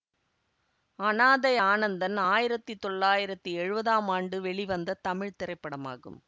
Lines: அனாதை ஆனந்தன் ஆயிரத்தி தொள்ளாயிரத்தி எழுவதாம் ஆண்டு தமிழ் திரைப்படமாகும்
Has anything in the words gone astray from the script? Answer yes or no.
yes